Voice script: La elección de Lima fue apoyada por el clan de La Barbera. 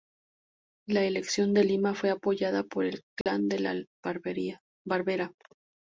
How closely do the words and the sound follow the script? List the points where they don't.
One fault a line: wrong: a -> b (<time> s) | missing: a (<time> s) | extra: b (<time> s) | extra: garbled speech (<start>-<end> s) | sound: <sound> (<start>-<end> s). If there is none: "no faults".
sound: dropout (3.2-3.3 s)